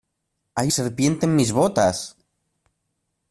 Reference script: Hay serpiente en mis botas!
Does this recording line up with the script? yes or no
yes